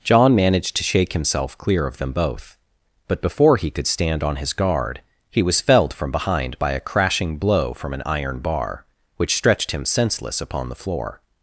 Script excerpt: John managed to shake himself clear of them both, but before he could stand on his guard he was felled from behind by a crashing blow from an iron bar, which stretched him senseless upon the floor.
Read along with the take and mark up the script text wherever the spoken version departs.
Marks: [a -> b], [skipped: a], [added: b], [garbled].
John managed to shake himself clear of them both, but before he could stand on his guard he was felled from behind by a crashing blow from an iron bar, which stretched him senseless upon the floor.